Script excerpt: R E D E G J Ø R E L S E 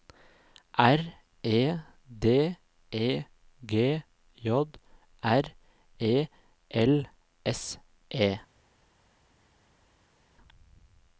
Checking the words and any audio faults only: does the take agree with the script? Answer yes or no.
no